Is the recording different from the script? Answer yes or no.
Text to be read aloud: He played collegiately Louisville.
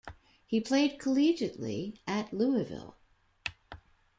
yes